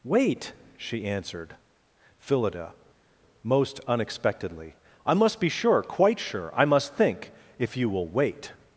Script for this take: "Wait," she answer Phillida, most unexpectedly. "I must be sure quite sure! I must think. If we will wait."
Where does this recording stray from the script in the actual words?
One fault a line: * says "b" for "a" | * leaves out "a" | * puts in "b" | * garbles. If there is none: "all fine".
* says "answered" for "answer"
* says "you" for "we"